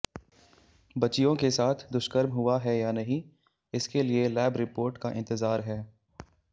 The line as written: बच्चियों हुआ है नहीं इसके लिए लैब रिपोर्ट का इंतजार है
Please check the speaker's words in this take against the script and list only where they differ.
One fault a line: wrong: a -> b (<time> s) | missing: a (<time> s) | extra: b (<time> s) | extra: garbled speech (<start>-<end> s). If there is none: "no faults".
extra: के साथ दुष्कर्म (1.4 s)
extra: या (2.8 s)